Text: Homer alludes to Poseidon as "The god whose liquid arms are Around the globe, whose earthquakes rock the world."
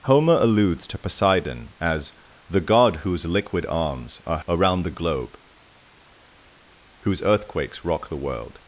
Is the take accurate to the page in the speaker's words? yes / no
yes